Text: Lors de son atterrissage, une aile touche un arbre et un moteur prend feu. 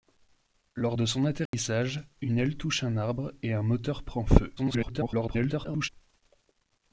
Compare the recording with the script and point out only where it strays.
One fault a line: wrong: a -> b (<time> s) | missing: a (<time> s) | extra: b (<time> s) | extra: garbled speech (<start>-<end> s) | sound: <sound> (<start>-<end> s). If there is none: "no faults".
sound: dropout (1.5-1.5 s)
extra: garbled speech (4.6-5.9 s)